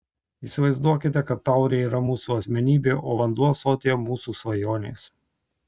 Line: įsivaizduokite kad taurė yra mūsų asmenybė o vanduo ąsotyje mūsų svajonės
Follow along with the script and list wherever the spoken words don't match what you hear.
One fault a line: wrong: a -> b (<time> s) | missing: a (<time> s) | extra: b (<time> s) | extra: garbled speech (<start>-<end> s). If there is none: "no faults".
no faults